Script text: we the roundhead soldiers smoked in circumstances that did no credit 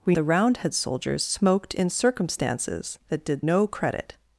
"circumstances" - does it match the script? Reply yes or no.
yes